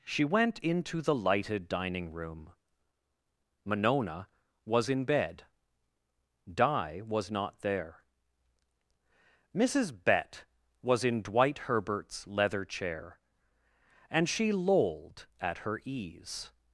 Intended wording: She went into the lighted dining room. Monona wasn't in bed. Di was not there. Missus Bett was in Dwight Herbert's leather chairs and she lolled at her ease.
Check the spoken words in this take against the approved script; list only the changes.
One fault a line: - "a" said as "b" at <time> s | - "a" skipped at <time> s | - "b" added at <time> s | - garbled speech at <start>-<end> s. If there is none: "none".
- "wasn't" said as "was" at 4.7 s
- "chairs" said as "chair" at 12.6 s